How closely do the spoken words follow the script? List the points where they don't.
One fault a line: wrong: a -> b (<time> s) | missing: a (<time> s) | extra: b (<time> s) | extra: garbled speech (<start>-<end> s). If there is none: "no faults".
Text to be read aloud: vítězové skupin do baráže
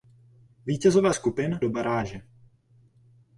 no faults